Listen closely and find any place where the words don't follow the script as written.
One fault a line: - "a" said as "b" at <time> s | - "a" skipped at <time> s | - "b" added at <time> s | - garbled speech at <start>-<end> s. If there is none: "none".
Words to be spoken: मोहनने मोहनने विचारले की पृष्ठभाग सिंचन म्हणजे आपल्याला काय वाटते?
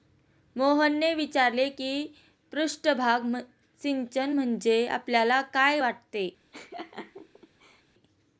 - "मोहनने" skipped at 1.1 s